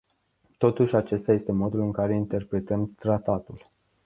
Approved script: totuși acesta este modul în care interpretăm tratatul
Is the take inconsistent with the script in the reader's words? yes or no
no